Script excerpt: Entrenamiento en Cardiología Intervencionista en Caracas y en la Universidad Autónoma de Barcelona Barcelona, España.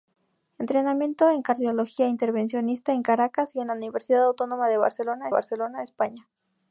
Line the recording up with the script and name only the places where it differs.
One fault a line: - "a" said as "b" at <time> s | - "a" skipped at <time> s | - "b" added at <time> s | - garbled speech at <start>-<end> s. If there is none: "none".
none